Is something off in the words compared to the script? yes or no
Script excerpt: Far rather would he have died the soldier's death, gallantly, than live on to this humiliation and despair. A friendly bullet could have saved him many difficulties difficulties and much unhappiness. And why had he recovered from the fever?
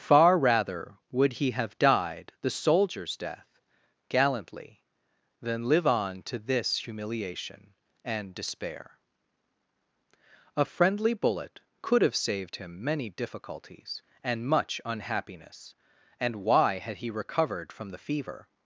yes